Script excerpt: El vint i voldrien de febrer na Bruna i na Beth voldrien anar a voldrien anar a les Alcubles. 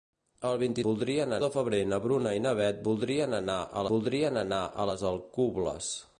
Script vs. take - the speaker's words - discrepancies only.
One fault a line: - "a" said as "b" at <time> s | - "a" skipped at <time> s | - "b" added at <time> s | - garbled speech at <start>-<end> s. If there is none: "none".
none